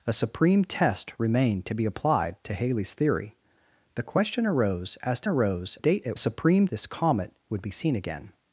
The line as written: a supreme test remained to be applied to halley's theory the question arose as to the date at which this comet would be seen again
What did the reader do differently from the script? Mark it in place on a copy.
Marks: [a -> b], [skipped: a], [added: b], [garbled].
a supreme test remained to be applied to halley's theory the question arose as to [the -> arose] date at [which -> supreme] this comet would be seen again